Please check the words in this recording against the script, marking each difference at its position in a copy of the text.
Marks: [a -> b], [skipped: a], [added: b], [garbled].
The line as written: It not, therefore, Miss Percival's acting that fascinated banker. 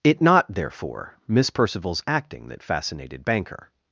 It not, therefore, Miss Percival's acting that fascinated banker.